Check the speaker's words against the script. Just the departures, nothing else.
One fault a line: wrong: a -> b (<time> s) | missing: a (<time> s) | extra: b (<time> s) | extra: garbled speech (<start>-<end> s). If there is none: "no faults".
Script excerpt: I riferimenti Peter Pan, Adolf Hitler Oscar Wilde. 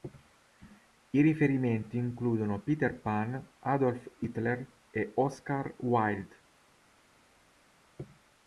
extra: includono (1.9 s)
extra: e (4.9 s)